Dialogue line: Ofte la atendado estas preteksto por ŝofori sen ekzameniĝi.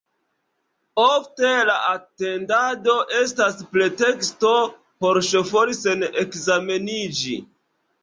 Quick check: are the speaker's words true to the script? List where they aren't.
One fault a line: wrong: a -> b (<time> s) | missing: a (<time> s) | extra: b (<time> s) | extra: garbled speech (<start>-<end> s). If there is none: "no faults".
no faults